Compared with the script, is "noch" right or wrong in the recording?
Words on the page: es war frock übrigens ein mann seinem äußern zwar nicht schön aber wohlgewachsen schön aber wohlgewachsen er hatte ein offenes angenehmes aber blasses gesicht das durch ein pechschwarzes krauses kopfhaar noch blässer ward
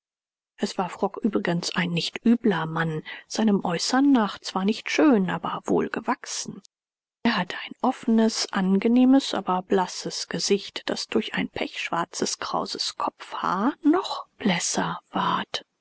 right